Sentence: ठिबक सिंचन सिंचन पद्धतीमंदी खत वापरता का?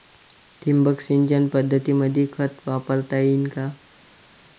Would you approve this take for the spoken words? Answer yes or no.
no